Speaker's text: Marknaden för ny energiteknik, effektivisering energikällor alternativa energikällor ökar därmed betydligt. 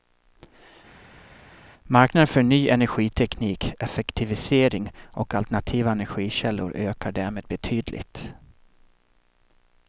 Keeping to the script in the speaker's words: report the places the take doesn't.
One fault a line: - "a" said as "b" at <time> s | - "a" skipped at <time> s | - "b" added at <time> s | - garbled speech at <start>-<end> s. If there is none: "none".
- "energikällor" said as "och" at 5.1 s